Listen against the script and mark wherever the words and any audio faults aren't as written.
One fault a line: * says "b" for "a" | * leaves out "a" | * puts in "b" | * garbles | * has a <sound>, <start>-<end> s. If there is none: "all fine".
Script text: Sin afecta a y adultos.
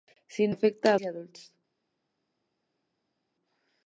all fine